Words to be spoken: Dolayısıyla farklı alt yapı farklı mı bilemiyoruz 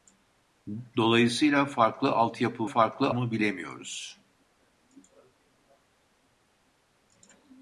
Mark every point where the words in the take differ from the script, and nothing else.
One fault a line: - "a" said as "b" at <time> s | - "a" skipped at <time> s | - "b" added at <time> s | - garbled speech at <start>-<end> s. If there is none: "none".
none